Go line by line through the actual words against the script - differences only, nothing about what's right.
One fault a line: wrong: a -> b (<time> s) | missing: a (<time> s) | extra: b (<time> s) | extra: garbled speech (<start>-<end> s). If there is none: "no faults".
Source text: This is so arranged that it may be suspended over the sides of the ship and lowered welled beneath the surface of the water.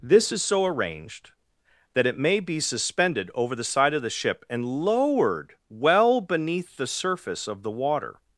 wrong: sides -> side (3.6 s)
wrong: welled -> well (5.7 s)